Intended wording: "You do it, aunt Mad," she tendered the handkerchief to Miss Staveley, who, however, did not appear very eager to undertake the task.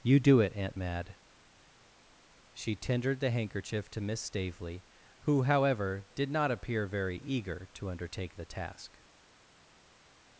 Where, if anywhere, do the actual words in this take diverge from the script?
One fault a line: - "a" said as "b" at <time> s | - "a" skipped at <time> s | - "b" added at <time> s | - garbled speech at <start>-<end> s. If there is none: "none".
none